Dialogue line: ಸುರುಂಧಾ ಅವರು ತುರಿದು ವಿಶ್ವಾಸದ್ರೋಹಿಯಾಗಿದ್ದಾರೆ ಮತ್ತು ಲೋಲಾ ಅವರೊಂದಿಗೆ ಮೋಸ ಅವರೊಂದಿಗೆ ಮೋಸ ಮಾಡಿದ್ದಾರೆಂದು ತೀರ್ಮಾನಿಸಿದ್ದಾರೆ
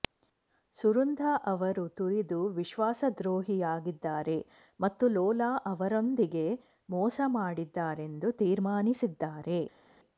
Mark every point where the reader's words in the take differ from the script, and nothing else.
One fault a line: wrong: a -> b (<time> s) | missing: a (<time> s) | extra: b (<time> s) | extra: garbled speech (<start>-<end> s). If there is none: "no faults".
missing: ಅವರೊಂದಿಗೆ ಮೋಸ (7.2 s)